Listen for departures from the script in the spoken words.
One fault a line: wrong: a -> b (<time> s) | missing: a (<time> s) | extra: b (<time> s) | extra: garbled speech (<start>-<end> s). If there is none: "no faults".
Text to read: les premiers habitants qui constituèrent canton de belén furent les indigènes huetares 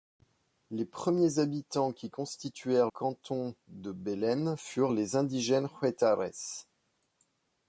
no faults